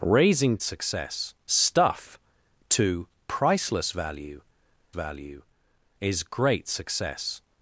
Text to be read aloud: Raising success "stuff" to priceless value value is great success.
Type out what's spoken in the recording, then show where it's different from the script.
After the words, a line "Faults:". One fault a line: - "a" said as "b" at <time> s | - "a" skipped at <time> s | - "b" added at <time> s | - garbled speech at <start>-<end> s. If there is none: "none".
Raising success "stuff" to priceless value value is great success.
Faults:
none